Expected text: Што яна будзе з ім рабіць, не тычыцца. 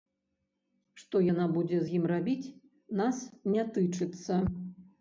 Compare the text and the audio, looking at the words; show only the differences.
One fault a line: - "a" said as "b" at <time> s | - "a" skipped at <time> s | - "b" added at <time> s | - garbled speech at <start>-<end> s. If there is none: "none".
- "нас" added at 3.0 s